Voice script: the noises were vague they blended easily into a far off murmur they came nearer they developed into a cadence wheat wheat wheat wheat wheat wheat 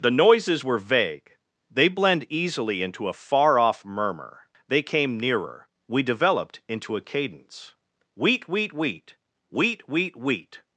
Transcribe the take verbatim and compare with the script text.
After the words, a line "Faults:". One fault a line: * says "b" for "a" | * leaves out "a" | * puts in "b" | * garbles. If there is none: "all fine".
the noises were vague they blend easily into a far off murmur they came nearer we developed into a cadence wheat wheat wheat wheat wheat wheat
Faults:
* says "blend" for "blended"
* says "we" for "they"